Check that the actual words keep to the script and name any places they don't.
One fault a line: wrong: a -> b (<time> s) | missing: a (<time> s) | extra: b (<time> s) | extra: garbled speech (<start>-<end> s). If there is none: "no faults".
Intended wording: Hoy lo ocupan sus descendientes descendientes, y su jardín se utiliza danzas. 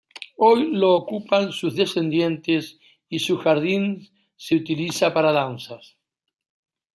missing: descendientes (2.8 s)
extra: para (5.1 s)